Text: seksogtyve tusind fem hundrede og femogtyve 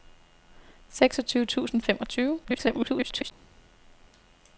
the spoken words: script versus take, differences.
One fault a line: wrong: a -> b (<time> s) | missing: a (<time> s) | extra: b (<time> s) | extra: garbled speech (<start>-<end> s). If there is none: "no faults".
missing: fem hundrede (1.8 s)
extra: garbled speech (2.4-3.3 s)